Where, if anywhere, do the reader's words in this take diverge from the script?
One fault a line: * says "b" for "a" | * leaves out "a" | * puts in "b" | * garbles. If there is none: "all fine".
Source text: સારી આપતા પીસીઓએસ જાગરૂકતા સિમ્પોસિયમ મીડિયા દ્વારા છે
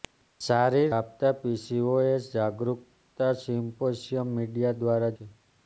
all fine